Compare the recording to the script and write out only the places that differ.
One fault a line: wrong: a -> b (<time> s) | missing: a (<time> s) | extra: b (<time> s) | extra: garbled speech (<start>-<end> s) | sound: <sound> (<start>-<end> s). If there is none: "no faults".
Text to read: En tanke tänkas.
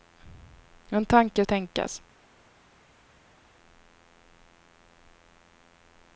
no faults